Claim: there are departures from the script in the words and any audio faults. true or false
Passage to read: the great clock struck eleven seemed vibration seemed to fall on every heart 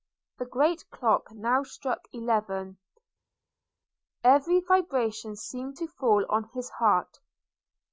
true